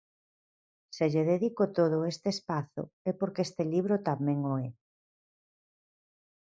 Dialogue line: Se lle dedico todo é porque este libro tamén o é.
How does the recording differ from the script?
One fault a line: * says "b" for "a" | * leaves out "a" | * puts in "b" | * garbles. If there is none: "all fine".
* puts in "este espazo"